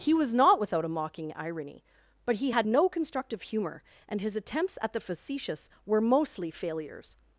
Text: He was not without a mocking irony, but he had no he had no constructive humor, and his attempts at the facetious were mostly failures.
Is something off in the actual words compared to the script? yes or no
yes